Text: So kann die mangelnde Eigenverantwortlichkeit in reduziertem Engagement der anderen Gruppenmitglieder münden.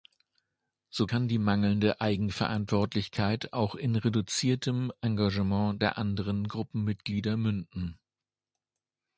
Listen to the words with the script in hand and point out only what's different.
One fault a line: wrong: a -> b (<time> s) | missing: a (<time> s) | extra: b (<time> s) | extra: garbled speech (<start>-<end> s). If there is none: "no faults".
extra: auch (3.5 s)